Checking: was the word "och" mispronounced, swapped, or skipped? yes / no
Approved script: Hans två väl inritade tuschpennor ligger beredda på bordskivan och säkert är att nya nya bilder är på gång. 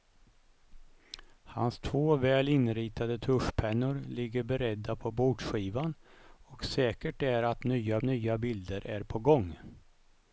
no